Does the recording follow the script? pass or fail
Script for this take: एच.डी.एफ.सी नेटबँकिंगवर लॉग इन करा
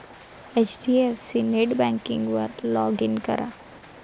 pass